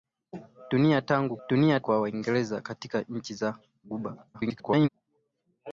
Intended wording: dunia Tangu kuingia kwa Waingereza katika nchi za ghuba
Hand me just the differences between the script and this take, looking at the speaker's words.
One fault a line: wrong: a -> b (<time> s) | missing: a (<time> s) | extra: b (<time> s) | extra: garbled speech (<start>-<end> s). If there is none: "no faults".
wrong: kuingia -> dunia (1.5 s)
extra: garbled speech (4.3-4.9 s)